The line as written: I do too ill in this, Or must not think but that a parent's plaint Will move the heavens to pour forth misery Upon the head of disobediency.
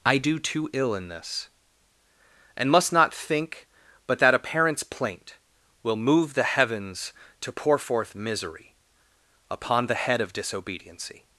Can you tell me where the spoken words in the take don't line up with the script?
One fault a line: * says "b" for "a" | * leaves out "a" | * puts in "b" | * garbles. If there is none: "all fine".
* says "And" for "Or"